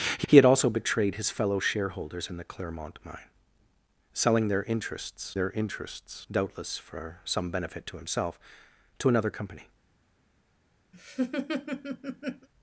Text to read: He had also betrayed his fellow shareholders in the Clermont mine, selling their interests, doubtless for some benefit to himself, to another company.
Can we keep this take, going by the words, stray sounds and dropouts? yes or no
no